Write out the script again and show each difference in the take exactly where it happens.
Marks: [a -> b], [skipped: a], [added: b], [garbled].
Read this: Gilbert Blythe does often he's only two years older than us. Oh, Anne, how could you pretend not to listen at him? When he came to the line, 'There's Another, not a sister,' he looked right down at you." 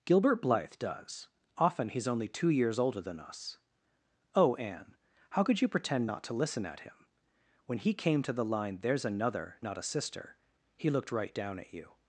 Gilbert Blythe does often he's only two years older than us. Oh, Anne, how could you pretend not to listen at him? When he came to the line, 'There's Another, not a sister,' he looked right down at you."